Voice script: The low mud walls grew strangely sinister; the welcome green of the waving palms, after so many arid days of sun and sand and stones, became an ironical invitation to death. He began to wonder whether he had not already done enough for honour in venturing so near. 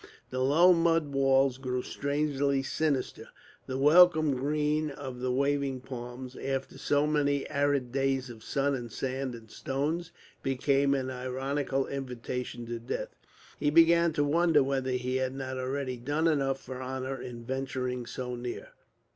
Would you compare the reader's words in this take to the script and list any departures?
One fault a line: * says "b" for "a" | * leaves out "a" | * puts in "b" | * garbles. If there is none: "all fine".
all fine